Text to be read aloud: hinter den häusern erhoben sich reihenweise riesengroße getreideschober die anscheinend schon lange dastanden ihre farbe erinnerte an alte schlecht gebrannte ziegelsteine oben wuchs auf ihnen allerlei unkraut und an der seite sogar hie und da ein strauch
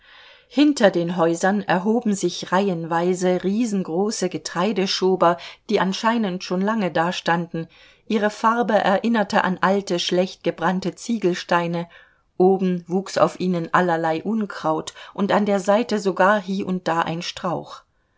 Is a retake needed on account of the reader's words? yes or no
no